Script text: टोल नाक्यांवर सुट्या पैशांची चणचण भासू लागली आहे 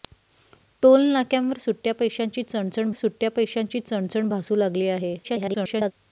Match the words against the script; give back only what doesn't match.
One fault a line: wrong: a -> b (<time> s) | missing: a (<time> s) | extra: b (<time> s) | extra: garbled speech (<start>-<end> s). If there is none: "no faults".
extra: सुट्या पैशांची चणचण (2.9 s)
extra: garbled speech (5.2-5.9 s)